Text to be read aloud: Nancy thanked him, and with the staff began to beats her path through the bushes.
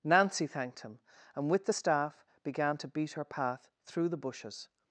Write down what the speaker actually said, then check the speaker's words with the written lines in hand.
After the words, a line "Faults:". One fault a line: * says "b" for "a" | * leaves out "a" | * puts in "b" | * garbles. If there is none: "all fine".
Nancy thanked him, and with the staff began to beat her path through the bushes.
Faults:
* says "beat" for "beats"